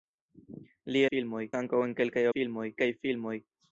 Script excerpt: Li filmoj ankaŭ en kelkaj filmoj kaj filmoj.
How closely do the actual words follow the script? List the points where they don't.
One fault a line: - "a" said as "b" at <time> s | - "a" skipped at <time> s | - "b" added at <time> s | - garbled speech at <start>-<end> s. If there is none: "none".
none